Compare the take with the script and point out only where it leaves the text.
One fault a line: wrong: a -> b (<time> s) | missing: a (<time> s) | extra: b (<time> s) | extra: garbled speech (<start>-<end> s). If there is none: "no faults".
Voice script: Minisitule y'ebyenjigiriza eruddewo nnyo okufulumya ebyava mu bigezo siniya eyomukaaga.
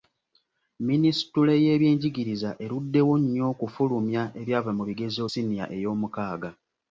no faults